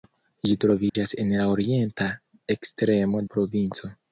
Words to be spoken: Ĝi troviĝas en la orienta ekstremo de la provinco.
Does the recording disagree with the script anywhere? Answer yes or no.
yes